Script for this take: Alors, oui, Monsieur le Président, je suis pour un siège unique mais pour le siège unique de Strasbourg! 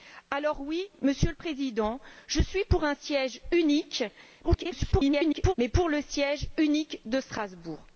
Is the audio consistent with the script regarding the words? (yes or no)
no